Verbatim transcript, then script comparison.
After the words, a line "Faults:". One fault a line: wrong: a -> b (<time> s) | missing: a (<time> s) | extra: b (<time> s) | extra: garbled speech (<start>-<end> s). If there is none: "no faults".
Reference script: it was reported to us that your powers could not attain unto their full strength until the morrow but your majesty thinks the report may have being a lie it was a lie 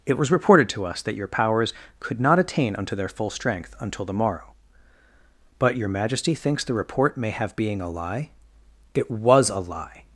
it was reported to us that your powers could not attain unto their full strength until the morrow but your majesty thinks the report may have being a lie it was a lie
Faults:
no faults